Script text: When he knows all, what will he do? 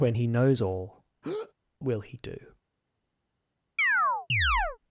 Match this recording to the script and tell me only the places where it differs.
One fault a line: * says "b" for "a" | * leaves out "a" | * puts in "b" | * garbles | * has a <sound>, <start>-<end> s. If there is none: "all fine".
* leaves out "what"
* has a breath, 1.2-1.5 s
* has a chirp, 3.8-4.8 s